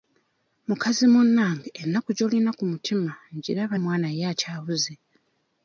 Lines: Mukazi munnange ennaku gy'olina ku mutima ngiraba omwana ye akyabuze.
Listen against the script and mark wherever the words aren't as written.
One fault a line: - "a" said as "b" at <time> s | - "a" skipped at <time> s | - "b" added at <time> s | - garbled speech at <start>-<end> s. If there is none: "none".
none